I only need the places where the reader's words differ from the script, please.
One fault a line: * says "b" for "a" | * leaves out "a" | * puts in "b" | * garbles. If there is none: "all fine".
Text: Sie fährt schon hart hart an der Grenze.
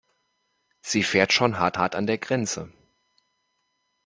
all fine